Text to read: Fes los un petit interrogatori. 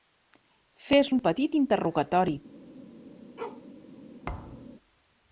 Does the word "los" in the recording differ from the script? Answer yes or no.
yes